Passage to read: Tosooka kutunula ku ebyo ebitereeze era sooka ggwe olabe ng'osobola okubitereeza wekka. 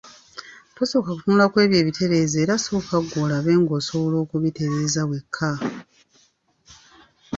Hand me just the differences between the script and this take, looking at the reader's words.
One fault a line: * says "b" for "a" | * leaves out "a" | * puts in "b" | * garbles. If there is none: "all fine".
all fine